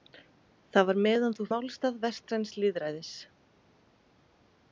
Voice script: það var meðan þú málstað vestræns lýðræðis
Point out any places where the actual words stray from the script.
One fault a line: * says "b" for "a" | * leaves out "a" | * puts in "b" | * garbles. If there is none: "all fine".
all fine